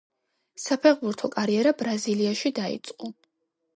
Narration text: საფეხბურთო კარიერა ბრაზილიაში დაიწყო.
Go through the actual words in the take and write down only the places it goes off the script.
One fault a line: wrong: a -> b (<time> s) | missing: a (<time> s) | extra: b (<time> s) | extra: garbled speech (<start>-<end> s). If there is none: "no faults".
no faults